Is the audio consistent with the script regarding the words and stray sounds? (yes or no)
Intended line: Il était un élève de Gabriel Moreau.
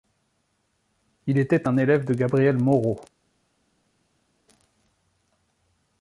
yes